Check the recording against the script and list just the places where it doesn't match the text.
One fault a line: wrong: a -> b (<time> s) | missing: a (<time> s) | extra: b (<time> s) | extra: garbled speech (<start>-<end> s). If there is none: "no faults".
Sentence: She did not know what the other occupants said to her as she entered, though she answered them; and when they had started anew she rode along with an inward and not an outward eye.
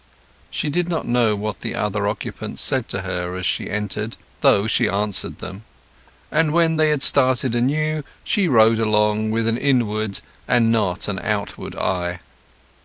no faults